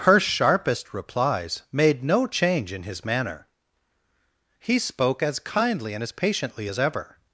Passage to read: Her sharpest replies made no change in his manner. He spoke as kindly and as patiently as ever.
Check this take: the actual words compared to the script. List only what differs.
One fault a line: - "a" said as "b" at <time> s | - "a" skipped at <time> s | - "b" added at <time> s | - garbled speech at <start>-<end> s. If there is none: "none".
none